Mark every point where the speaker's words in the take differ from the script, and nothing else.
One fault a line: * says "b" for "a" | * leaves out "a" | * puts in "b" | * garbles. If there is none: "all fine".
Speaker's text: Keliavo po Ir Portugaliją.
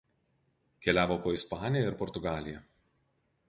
* puts in "Ispaniją"